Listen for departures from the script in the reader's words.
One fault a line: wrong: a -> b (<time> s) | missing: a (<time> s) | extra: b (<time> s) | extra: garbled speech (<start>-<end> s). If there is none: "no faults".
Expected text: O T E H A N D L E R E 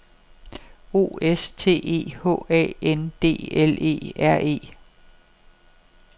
extra: S (1.2 s)